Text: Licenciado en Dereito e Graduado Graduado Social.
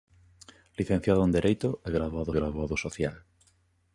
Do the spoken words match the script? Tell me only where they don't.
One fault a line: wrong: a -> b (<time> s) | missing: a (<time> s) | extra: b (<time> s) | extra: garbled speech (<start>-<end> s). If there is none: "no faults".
no faults